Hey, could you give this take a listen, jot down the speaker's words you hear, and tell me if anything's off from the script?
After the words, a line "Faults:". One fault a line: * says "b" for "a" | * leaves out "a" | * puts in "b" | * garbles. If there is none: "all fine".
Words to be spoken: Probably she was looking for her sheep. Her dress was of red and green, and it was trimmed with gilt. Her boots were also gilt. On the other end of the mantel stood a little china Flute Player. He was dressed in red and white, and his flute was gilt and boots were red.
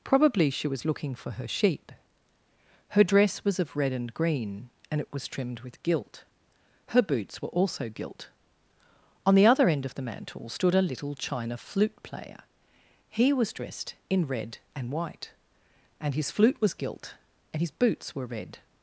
Probably she was looking for her sheep. Her dress was of red and green, and it was trimmed with gilt. Her boots were also gilt. On the other end of the mantel stood a little china Flute Player. He was dressed in red and white, and his flute was gilt and his boots were red.
Faults:
* puts in "his"